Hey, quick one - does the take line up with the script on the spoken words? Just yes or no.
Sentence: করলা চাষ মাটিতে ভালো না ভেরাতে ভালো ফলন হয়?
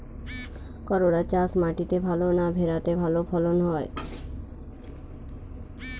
yes